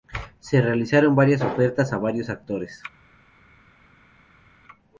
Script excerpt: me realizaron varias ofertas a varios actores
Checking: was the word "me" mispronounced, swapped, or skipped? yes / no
yes